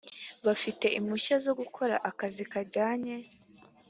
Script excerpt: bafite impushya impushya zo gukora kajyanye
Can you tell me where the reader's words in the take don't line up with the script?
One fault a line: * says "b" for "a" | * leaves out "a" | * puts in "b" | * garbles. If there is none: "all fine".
* leaves out "impushya"
* puts in "akazi"